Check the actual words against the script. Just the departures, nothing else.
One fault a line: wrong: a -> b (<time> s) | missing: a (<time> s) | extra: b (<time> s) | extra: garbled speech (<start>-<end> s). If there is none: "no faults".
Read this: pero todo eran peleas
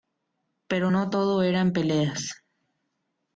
extra: no (0.9 s)